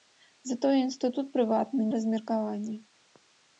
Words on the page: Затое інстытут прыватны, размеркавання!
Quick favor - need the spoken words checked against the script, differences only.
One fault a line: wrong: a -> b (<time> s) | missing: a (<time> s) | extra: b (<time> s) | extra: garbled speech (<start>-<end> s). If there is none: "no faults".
no faults